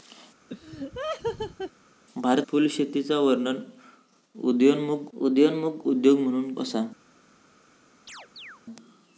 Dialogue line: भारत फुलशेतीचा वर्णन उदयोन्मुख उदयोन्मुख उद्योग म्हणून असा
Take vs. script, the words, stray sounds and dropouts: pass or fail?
fail